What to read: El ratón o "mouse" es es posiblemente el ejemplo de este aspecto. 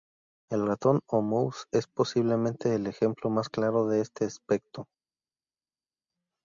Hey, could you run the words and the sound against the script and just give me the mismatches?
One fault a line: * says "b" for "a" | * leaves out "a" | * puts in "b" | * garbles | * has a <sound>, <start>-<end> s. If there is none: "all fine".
* leaves out "es"
* puts in "más claro"